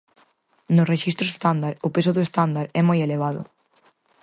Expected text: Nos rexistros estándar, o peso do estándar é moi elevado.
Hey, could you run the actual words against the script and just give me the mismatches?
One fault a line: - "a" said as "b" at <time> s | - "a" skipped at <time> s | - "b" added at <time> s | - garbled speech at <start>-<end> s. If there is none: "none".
none